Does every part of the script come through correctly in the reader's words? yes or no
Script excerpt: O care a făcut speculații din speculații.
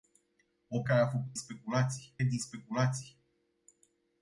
yes